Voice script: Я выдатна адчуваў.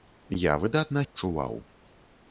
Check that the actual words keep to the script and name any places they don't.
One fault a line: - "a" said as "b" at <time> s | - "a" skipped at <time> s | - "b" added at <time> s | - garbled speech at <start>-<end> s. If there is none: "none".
none